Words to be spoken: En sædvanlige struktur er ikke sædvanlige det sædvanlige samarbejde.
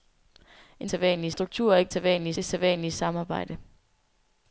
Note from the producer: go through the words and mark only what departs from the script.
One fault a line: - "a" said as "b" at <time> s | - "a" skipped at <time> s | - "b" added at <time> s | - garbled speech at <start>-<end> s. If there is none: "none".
none